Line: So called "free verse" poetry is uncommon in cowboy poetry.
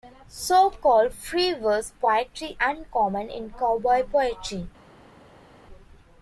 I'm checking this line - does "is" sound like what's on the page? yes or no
no